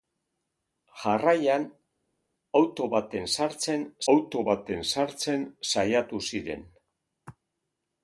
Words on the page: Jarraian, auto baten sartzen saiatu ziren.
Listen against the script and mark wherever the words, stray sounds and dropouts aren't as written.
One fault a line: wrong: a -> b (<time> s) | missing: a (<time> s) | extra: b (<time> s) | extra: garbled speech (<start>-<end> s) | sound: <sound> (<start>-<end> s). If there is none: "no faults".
extra: auto baten sartzen (4.2 s)